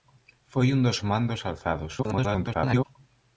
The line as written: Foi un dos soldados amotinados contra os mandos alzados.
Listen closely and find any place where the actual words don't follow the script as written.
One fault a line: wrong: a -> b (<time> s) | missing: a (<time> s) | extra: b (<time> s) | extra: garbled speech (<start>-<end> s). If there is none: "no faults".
missing: soldados amotinados contra (1.0 s)
extra: garbled speech (2.0-2.9 s)